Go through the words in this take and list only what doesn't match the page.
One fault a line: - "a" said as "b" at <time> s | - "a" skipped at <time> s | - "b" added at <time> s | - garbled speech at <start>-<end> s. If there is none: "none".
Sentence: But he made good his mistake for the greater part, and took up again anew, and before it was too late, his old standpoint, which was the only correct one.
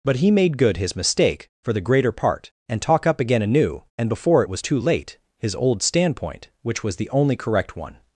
- "took" said as "talk" at 2.8 s